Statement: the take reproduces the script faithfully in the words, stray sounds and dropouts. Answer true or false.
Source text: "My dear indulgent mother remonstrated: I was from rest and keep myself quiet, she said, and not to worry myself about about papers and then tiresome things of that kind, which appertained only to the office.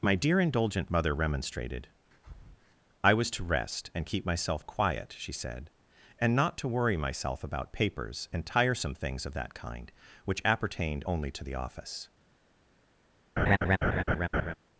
false